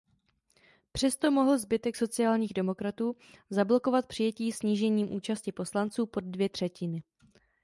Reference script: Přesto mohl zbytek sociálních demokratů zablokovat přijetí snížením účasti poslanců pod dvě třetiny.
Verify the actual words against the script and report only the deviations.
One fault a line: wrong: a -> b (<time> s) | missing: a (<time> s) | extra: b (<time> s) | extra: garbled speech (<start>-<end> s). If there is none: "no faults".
no faults